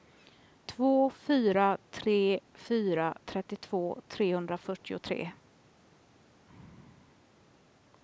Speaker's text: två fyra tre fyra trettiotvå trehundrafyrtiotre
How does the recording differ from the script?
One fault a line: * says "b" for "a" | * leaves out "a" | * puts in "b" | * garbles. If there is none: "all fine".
all fine